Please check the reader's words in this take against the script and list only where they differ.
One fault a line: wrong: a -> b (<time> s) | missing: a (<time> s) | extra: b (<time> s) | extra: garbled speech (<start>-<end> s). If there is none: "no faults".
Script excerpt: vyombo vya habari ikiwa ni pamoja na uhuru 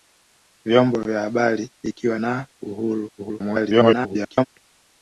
missing: ni pamoja (2.2 s)
extra: garbled speech (3.2-4.5 s)